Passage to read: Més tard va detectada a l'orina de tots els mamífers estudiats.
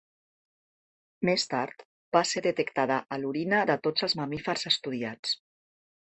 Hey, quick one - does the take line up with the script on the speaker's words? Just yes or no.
no